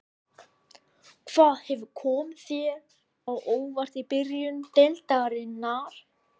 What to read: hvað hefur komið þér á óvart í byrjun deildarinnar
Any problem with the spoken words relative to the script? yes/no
no